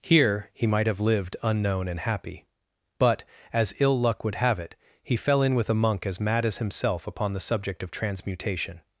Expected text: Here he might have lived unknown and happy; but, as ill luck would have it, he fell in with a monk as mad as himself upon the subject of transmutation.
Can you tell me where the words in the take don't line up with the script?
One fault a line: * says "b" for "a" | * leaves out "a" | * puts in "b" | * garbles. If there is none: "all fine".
all fine